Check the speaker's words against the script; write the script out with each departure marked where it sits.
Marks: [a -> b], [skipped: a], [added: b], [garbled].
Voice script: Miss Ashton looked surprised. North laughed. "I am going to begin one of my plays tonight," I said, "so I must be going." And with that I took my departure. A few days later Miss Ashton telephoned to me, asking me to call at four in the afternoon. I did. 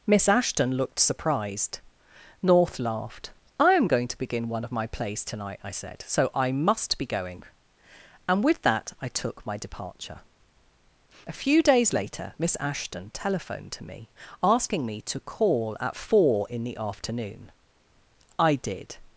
Miss Ashton looked surprised. North laughed. "I am going to begin one of my plays tonight," I said, "so I must be going." And with that I took my departure. A few days later Miss Ashton telephoned to me, asking me to call at four in the afternoon. I did.